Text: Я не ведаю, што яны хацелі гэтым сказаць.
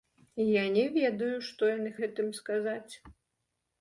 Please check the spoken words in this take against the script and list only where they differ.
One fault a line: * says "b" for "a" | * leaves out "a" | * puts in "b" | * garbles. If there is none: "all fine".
* leaves out "хацелі"